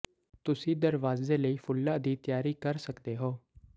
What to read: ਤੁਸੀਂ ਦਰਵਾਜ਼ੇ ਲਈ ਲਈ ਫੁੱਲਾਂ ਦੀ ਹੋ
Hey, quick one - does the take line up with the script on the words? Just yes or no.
no